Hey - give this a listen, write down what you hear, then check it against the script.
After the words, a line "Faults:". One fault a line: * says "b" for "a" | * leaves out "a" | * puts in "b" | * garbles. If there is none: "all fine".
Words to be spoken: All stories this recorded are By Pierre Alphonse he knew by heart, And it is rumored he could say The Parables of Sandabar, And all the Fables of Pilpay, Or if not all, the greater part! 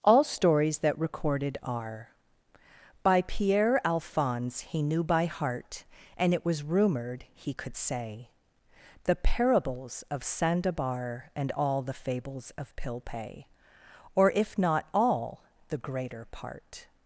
All stories that recorded are By Pierre Alphonse he knew by heart, And it was rumored he could say The Parables of Sandabar, And all the Fables of Pilpay, Or if not all, the greater part!
Faults:
* says "that" for "this"
* says "was" for "is"